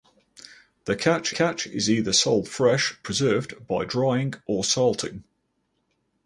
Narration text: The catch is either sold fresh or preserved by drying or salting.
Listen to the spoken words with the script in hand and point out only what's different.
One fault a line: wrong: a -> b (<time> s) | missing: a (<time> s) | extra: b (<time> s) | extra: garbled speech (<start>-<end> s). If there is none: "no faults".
extra: catch (1.3 s)
missing: or (3.0 s)